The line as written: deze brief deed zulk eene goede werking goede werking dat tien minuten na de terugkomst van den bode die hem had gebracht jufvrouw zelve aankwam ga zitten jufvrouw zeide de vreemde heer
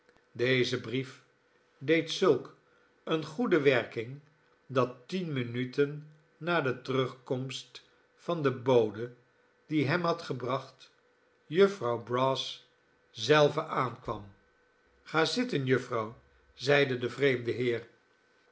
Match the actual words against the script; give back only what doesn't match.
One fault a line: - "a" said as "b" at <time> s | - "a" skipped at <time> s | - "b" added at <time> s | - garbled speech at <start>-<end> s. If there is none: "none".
- "goede werking" skipped at 4.2 s
- "brass" added at 12.0 s